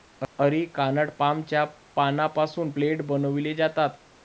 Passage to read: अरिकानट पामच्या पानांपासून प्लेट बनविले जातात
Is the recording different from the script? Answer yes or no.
no